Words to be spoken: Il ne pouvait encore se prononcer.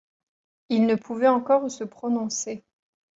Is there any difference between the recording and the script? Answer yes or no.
no